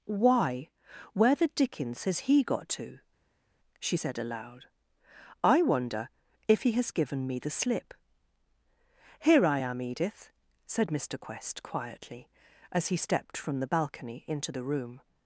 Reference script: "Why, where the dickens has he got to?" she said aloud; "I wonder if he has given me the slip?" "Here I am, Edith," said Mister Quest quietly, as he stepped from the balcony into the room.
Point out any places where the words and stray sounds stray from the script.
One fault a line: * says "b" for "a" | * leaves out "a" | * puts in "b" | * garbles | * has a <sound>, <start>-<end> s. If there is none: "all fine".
all fine